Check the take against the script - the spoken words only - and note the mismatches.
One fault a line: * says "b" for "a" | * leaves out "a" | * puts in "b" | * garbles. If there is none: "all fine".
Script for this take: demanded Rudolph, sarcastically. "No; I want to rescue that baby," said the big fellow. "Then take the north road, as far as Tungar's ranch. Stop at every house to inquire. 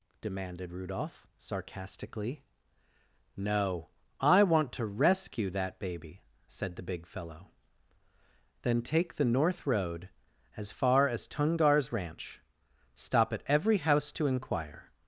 all fine